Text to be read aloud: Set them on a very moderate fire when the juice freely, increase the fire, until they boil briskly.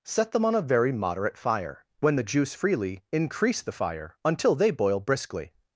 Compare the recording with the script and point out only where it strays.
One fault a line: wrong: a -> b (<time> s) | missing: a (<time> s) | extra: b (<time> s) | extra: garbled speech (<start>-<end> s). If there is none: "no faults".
no faults